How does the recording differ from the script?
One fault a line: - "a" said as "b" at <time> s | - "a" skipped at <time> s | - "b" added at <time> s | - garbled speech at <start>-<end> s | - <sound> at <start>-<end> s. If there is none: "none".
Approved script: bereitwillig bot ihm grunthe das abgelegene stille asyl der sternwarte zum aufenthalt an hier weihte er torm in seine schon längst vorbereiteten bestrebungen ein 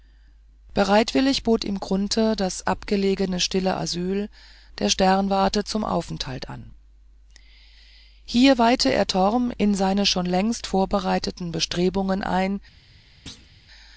- thud at 13.3-13.5 s